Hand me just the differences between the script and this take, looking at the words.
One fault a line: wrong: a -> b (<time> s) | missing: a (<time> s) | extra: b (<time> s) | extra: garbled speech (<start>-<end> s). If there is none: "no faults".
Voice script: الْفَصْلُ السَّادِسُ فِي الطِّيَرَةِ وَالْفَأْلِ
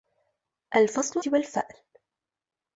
missing: السَّادِسُ فِي الطِّيَرَةِ (1.2 s)